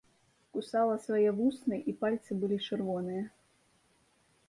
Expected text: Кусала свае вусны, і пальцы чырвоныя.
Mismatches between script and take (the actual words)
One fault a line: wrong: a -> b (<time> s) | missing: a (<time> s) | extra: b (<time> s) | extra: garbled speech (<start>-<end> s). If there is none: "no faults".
extra: былі (2.5 s)